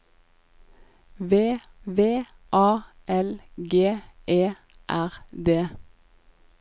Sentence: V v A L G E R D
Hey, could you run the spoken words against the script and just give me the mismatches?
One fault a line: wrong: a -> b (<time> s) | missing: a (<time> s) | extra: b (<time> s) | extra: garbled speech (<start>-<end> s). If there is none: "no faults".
no faults